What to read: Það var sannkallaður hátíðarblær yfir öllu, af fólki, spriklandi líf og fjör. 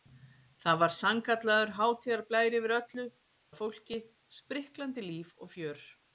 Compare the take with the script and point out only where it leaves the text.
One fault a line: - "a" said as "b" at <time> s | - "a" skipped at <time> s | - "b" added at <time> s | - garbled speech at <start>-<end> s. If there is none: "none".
none